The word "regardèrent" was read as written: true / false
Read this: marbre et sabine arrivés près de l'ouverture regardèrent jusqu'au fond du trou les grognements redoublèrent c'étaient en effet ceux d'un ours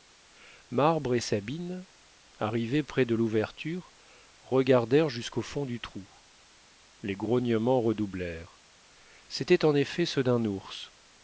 true